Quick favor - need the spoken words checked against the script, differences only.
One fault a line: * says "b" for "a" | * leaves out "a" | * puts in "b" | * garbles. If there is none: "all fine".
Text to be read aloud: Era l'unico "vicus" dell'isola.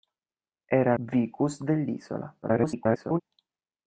* leaves out "l'unico"
* garbles